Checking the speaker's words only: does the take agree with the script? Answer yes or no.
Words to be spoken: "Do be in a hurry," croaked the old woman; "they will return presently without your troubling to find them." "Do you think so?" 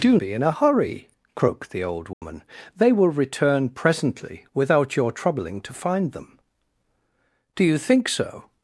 yes